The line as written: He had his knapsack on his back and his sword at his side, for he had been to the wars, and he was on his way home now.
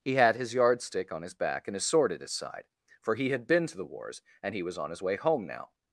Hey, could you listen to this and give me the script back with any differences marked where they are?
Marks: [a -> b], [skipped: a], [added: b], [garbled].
He had his [knapsack -> yardstick] on his back and his sword at his side, for he had been to the wars, and he was on his way home now.